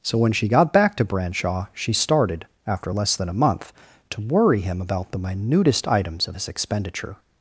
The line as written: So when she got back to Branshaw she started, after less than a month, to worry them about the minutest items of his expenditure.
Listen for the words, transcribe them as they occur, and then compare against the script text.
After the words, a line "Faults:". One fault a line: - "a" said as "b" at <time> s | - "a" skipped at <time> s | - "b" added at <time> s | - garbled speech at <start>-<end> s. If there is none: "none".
So when she got back to Branshaw she started, after less than a month, to worry him about the minutest items of his expenditure.
Faults:
- "them" said as "him" at 4.6 s